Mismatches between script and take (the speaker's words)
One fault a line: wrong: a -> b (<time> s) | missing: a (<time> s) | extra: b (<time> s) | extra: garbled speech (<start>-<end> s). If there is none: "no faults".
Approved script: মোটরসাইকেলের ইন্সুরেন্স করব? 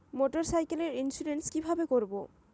extra: কিভাবে (1.5 s)